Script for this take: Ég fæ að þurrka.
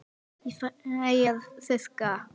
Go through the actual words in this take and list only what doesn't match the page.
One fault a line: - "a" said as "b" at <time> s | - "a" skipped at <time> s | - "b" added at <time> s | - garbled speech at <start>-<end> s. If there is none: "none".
none